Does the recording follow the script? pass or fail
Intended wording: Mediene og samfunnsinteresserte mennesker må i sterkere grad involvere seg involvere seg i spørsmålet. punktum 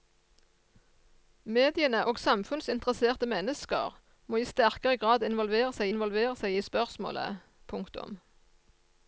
pass